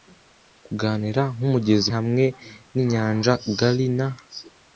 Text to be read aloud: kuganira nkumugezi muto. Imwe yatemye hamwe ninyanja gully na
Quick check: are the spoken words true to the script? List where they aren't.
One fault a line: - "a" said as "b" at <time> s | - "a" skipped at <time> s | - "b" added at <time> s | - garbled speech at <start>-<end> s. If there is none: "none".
- "muto Imwe yatemye" skipped at 1.9 s